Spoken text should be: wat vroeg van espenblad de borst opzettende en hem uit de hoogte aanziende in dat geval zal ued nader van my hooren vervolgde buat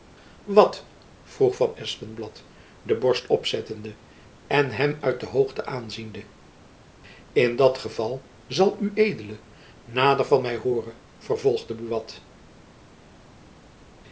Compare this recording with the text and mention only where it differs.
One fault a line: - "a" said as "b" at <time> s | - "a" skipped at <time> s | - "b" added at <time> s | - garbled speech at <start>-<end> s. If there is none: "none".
none